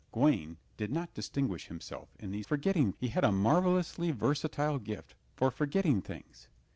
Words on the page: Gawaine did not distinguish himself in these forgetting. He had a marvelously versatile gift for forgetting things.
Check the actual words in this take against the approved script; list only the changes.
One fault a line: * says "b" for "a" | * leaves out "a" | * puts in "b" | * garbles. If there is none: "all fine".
all fine